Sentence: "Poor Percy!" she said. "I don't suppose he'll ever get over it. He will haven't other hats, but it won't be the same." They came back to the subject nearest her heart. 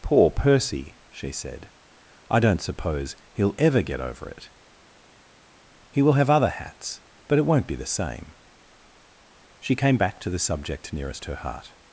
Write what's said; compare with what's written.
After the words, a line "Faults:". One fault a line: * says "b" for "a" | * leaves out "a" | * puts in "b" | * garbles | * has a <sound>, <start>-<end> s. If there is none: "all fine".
"Poor Percy!" she said. "I don't suppose he'll ever get over it. He will have other hats, but it won't be the same." She came back to the subject nearest her heart.
Faults:
* says "have" for "haven't"
* says "She" for "They"